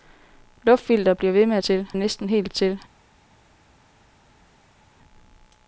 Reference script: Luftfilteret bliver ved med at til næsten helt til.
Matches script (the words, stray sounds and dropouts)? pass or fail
pass